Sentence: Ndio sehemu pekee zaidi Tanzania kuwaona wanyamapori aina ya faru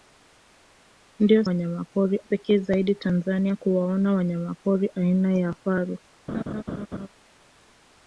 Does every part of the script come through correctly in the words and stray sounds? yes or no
no